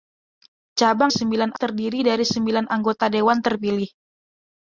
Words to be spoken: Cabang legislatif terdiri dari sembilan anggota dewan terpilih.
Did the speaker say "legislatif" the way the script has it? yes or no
no